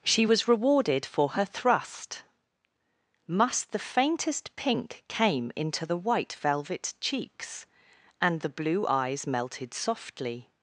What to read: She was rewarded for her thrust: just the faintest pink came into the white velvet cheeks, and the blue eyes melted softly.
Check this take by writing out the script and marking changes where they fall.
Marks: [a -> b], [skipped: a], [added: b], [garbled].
She was rewarded for her thrust: [just -> must] the faintest pink came into the white velvet cheeks, and the blue eyes melted softly.